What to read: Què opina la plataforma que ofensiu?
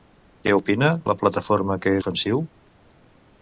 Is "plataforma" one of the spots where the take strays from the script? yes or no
no